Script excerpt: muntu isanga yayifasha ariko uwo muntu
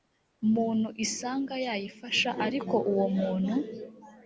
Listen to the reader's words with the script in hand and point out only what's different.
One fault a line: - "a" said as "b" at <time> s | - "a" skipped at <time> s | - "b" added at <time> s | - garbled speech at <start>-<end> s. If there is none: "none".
none